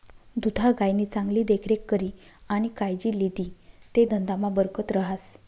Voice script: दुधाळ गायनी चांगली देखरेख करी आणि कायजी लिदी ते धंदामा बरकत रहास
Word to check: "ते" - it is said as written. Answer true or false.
true